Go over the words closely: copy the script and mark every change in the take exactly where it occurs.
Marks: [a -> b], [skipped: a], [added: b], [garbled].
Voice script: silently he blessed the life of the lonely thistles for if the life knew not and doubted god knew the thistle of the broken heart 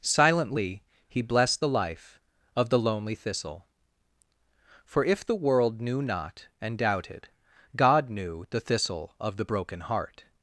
silently he blessed the life of the lonely [thistles -> thistle] for if the [life -> world] knew not and doubted god knew the thistle of the broken heart